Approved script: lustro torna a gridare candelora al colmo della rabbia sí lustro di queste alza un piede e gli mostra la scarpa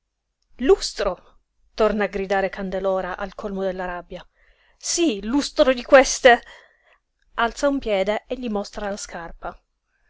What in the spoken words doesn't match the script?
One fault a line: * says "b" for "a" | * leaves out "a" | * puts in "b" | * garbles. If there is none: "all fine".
all fine